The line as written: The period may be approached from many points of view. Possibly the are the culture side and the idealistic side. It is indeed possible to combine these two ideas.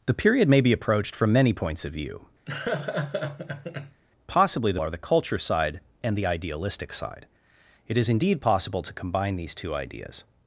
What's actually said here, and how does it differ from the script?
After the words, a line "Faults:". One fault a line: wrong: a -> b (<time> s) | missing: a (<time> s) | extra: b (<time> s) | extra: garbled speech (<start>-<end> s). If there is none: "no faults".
The period may be approached from many points of view. Possibly the are the culture side and the idealistic side. It is indeed possible to combine these two ideas.
Faults:
no faults